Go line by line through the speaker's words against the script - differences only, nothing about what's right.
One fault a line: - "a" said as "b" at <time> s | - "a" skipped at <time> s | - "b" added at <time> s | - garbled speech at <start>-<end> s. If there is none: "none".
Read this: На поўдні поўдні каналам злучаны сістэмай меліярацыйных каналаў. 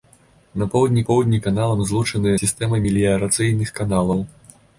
none